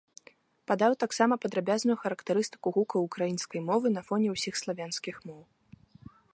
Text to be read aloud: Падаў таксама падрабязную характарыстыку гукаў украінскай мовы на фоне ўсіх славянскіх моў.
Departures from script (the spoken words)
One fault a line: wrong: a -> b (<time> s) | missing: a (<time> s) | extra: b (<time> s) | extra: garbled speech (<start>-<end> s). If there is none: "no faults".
no faults